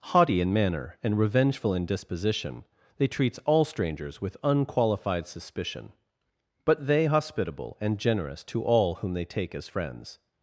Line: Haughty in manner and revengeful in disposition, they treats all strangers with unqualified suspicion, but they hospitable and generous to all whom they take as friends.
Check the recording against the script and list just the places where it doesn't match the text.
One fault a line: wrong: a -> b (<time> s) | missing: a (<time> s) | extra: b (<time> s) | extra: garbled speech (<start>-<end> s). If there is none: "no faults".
no faults